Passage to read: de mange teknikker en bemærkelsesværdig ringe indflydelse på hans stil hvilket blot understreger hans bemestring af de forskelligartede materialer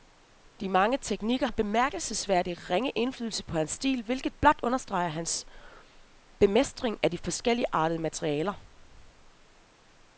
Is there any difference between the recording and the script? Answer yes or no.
no